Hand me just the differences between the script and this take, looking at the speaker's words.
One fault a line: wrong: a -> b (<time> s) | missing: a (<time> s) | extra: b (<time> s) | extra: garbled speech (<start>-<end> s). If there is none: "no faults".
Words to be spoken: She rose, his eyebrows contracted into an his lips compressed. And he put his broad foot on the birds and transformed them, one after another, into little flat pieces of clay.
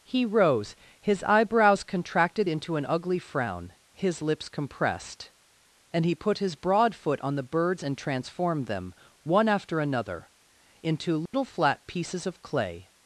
wrong: She -> He (0.0 s)
extra: ugly frown (2.9 s)